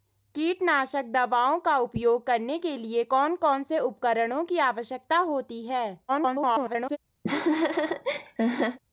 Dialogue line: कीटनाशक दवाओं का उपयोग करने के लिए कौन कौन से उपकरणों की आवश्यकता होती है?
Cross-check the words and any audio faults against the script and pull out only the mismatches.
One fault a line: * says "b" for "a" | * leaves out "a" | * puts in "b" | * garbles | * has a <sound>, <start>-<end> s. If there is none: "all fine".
* garbles
* has a laugh, 7.2-8.8 s